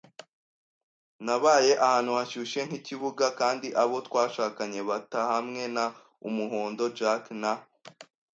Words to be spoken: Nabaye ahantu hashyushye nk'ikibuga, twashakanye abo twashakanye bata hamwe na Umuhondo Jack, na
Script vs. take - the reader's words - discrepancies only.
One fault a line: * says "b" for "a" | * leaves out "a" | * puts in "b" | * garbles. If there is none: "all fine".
* says "kandi" for "twashakanye"